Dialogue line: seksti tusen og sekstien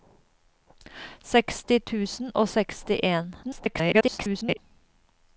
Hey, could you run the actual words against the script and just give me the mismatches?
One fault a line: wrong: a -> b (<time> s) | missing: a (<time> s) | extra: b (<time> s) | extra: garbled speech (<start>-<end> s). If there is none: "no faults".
extra: garbled speech (3.4-4.6 s)